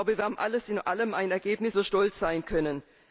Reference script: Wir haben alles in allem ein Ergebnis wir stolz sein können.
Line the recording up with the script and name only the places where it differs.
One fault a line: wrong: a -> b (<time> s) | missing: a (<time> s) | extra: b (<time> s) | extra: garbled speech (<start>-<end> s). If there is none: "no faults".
no faults